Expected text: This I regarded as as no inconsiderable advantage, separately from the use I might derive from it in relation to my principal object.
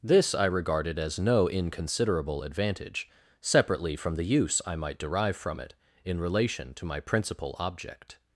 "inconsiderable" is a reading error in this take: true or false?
false